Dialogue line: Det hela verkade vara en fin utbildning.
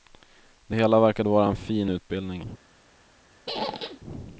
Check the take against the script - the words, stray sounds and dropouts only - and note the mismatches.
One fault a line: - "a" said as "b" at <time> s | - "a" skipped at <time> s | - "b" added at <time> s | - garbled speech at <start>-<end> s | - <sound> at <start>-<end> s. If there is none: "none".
- squeak at 3.5-4.0 s